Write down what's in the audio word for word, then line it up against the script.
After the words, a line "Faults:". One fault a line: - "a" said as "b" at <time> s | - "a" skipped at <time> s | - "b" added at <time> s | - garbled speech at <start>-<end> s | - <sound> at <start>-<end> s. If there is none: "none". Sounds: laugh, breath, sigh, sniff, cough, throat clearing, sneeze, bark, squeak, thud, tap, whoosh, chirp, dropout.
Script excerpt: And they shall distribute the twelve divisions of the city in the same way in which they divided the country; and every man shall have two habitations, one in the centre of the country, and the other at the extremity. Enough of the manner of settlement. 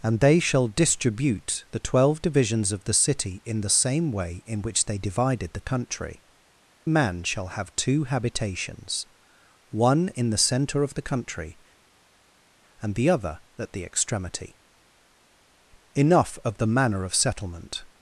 And they shall distribute the twelve divisions of the city in the same way in which they divided the country; man shall have two habitations, one in the centre of the country, and the other at the extremity. Enough of the manner of settlement.
Faults:
- "and every" skipped at 6.2 s